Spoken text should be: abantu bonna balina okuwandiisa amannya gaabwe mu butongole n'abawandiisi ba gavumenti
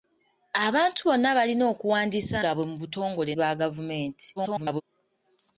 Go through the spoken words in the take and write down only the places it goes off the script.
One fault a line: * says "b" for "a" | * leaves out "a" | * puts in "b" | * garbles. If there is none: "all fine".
* leaves out "amannya"
* leaves out "n'abawandiisi"
* garbles